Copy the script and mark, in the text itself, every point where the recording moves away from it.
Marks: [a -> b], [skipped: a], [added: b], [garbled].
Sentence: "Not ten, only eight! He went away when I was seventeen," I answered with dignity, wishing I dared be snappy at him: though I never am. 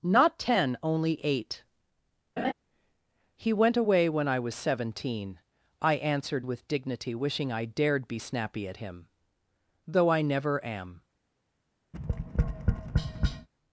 "Not ten, only eight! He went away when I was seventeen," I answered with dignity, wishing I dared be snappy at him: though I never am.